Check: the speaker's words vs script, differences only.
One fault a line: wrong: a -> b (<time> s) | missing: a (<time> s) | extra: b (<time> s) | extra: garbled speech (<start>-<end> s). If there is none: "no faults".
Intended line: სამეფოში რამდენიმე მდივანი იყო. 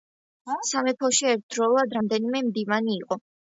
extra: ერთდროულად (1.4 s)